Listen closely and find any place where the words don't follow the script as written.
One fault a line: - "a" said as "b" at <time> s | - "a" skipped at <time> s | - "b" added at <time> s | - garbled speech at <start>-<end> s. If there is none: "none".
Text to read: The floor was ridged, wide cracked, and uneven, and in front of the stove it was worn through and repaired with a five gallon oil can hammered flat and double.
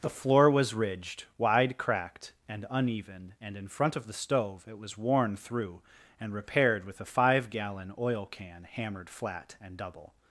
none